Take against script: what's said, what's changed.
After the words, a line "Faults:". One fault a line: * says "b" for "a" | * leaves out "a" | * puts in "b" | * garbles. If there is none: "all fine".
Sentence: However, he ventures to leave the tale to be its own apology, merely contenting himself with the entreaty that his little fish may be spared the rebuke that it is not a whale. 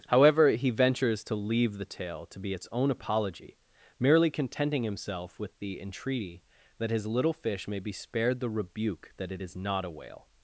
However, he ventures to leave the tale to be its own apology, merely contenting himself with the entreaty that his little fish may be spared the rebuke that it is not a whale.
Faults:
all fine